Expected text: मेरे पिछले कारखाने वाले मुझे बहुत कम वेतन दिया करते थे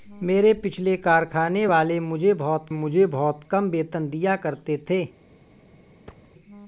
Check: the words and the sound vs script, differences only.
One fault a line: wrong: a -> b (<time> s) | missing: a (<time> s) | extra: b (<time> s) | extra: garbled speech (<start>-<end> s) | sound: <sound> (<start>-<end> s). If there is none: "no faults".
extra: मुझे बहुत (2.7 s)
sound: thud (6.1-6.3 s)